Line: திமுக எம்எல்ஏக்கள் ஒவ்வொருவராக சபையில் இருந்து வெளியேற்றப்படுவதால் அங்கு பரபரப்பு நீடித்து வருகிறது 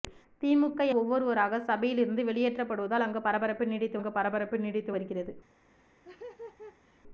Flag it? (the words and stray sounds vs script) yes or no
yes